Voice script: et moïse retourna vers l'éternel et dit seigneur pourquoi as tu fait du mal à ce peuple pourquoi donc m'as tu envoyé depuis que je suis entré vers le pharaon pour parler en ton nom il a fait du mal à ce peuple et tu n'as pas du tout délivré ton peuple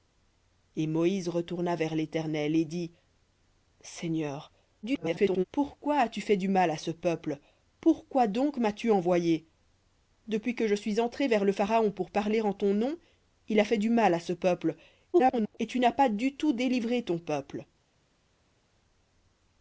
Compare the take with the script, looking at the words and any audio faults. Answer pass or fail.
fail